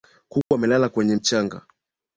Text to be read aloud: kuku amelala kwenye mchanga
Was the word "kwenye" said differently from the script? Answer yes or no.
no